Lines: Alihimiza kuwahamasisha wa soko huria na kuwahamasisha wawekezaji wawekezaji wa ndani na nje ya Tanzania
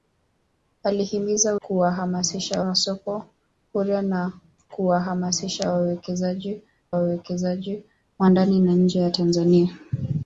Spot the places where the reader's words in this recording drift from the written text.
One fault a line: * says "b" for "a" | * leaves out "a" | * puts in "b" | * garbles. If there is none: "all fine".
all fine